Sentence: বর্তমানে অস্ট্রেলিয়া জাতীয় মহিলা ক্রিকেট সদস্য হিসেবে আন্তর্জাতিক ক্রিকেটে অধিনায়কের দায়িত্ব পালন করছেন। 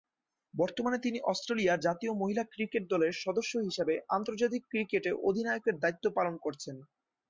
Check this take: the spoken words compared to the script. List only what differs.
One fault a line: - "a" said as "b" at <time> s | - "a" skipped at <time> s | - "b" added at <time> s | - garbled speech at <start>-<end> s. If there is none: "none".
- "তিনি" added at 1.0 s
- "দলের" added at 2.9 s